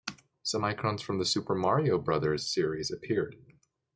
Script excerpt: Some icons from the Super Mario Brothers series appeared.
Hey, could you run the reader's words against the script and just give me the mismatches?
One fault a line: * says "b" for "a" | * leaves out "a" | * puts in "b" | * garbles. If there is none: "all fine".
all fine